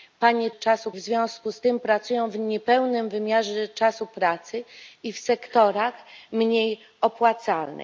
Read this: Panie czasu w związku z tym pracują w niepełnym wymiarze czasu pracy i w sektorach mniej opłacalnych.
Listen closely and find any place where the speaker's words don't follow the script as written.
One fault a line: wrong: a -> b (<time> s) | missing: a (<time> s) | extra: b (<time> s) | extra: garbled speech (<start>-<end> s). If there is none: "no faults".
no faults